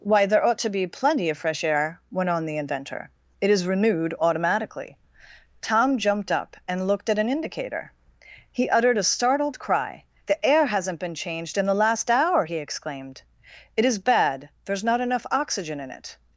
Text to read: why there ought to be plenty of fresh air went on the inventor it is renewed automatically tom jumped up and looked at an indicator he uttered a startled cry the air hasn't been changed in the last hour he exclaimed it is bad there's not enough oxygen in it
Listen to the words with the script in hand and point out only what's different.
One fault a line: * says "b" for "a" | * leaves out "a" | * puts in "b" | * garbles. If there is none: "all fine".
all fine